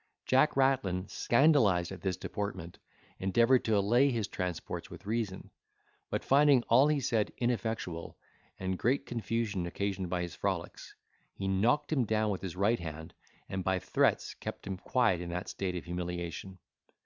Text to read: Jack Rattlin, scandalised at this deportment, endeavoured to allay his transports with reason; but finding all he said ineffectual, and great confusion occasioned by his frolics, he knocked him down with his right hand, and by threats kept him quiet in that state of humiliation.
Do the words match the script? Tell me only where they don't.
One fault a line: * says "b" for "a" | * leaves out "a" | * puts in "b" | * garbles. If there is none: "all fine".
all fine